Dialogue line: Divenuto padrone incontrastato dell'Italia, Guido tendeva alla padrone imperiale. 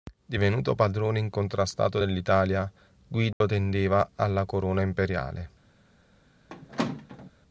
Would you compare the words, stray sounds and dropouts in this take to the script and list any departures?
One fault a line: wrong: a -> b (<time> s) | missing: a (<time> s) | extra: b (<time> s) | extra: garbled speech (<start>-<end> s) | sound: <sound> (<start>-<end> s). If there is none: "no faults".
sound: dropout (3.3-3.4 s)
wrong: padrone -> corona (4.5 s)
sound: squeak (6.5-7.3 s)